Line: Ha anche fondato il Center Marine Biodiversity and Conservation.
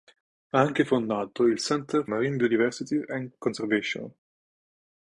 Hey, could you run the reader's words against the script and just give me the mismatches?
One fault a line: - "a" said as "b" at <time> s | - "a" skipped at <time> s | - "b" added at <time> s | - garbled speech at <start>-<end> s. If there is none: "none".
none